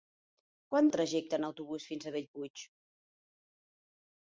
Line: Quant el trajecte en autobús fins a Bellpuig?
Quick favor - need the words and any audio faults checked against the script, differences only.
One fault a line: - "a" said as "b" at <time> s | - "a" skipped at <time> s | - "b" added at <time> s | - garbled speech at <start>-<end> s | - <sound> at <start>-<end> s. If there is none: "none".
none